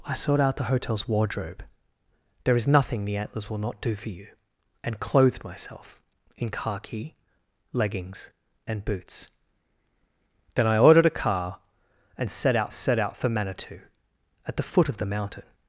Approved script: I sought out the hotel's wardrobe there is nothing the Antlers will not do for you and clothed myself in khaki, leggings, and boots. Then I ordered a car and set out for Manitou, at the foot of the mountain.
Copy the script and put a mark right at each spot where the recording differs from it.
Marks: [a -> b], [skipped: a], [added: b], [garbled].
I sought out the hotel's wardrobe there is nothing the Antlers will not do for you and clothed myself in khaki, leggings, and boots. Then I ordered a car and set out [added: set out] for Manitou, at the foot of the mountain.